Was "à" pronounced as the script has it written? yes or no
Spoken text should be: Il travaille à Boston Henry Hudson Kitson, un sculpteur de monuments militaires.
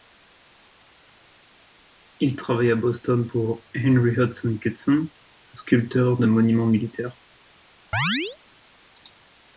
yes